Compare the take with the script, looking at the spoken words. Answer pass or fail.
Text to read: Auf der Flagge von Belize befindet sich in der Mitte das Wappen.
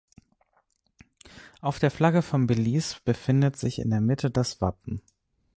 pass